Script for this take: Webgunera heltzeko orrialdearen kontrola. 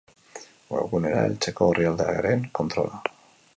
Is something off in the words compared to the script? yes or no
no